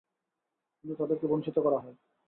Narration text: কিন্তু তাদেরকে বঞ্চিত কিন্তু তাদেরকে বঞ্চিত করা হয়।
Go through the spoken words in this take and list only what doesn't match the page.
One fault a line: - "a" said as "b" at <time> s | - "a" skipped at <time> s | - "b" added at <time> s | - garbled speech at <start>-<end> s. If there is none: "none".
- "কিন্তু তাদেরকে বঞ্চিত" skipped at 1.6 s